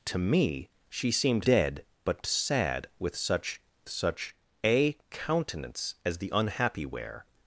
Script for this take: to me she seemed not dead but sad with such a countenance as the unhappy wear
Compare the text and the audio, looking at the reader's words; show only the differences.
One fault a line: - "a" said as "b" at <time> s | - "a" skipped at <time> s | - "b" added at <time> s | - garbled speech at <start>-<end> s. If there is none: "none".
- "not" skipped at 1.5 s
- "such" added at 3.9 s